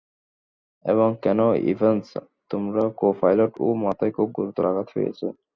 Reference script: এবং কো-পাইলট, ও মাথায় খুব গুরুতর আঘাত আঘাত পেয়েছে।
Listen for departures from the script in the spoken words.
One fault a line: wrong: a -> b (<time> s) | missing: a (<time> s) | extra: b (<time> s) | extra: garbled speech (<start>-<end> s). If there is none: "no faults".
extra: কেন ইভান্স তোমার (1.2 s)
missing: আঘাত (4.9 s)